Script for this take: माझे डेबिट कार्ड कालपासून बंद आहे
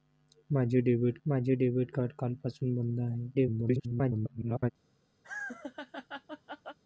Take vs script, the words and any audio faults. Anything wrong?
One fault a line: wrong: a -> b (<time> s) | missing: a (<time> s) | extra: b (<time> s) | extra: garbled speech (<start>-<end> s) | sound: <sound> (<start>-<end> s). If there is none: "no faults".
extra: माझे डेबिट (1.2 s)
extra: garbled speech (3.3-4.7 s)
sound: laugh (5.2-6.8 s)